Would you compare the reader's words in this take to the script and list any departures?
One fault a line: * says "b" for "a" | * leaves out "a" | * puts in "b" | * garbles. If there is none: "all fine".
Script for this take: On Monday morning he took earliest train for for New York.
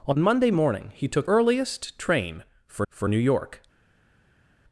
all fine